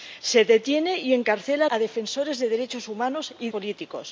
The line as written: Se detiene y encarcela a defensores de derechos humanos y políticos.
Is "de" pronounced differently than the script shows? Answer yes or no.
no